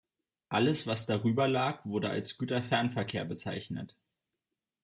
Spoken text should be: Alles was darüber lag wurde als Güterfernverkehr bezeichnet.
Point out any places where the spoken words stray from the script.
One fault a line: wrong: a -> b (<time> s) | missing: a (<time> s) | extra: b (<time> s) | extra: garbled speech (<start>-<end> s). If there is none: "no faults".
no faults